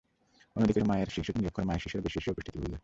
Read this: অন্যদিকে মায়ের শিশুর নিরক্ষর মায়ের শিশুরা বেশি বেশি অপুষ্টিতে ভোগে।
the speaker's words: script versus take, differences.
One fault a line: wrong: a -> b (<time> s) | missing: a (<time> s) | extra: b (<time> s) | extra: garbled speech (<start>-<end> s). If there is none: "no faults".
no faults